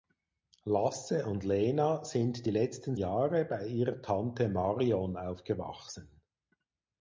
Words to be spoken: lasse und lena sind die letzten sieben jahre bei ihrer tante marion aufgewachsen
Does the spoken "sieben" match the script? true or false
false